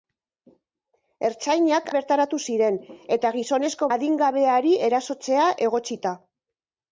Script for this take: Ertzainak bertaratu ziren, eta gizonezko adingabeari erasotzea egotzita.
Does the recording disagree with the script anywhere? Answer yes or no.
no